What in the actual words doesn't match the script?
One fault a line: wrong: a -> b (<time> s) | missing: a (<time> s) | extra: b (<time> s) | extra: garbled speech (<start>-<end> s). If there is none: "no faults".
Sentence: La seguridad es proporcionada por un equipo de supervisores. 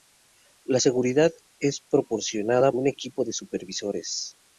missing: por (2.7 s)